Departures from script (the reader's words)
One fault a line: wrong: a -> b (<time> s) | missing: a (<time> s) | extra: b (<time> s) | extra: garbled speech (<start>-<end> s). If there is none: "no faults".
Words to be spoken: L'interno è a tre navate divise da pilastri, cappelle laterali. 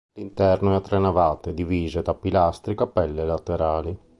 no faults